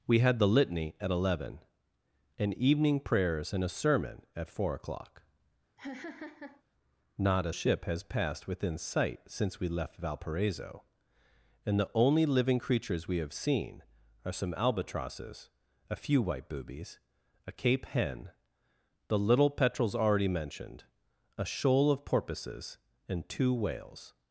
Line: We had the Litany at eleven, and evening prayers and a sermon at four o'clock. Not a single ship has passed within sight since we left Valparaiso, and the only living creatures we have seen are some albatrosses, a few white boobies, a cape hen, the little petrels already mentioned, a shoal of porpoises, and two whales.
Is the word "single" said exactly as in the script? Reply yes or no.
no